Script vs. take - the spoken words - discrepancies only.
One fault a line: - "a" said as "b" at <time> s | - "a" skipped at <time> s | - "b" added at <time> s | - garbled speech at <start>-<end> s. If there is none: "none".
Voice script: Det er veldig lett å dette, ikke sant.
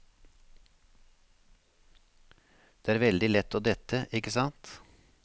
none